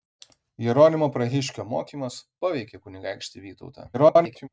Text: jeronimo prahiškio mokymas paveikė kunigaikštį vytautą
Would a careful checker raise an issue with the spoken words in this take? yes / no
yes